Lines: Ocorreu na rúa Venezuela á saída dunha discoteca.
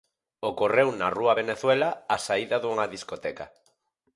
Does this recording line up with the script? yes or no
yes